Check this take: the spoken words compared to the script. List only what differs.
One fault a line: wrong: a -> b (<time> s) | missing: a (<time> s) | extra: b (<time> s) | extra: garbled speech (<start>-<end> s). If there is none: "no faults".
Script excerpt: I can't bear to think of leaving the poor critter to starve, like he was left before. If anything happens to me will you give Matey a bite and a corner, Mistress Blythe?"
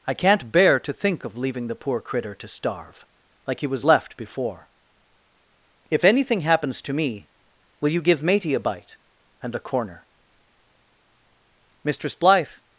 no faults